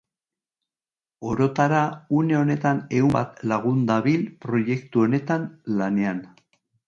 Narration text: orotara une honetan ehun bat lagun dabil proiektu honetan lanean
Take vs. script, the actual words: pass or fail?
pass